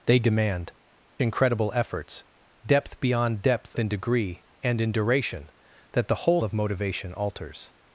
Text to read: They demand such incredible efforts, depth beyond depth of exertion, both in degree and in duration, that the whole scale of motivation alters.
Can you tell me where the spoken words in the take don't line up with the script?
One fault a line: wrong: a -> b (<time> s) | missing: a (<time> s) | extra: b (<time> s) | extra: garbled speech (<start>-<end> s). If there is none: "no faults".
missing: such (0.7 s)
missing: of exertion both (3.7 s)
missing: scale (6.4 s)